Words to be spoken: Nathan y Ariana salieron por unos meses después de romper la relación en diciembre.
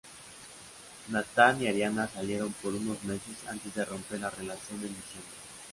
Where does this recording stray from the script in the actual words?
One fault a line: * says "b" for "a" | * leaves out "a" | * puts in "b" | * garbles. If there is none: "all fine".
* says "antes" for "después"